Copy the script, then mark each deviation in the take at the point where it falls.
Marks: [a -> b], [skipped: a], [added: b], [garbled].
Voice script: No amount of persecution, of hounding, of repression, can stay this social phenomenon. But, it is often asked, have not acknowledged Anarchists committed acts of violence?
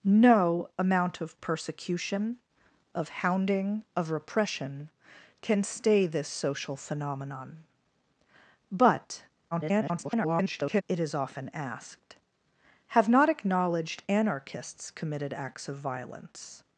No amount of persecution, of hounding, of repression, can stay this social phenomenon. But, [garbled] it is often asked, have not acknowledged Anarchists committed acts of violence?